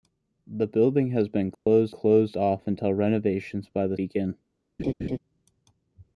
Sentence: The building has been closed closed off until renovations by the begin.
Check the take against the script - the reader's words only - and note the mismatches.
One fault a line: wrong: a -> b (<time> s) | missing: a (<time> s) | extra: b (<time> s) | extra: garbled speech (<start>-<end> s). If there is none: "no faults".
no faults